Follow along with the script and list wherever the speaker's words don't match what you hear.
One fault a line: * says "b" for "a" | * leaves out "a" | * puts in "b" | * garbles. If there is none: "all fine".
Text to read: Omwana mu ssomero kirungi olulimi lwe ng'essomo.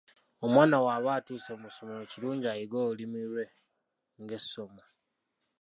* puts in "bw'aba atuuse"
* puts in "ayige"